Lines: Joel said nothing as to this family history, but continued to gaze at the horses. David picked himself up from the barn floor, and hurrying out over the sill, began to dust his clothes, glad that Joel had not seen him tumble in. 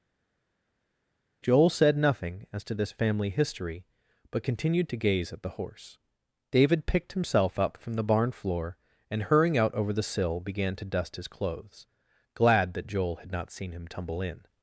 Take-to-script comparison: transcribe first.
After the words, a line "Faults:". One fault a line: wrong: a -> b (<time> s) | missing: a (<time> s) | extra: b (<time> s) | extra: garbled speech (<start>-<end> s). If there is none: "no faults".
Joel said nothing as to this family history, but continued to gaze at the horse. David picked himself up from the barn floor, and hurrying out over the sill, began to dust his clothes, glad that Joel had not seen him tumble in.
Faults:
wrong: horses -> horse (5.5 s)